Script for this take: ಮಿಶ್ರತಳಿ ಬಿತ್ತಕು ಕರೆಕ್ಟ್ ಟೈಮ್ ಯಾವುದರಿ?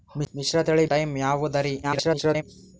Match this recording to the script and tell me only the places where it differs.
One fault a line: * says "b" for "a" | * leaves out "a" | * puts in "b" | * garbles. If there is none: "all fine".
* leaves out "ಬಿತ್ತಕು ಕರೆಕ್ಟ್"
* garbles